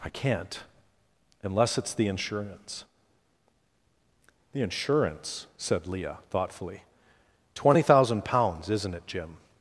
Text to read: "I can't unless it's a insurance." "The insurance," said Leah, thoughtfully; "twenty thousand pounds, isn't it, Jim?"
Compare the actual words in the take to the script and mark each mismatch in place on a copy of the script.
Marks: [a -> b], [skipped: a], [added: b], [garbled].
"I can't unless it's [a -> the] insurance." "The insurance," said Leah, thoughtfully; "twenty thousand pounds, isn't it, Jim?"